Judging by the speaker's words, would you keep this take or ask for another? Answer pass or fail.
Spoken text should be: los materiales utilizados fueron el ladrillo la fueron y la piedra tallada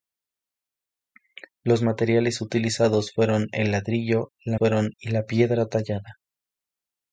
pass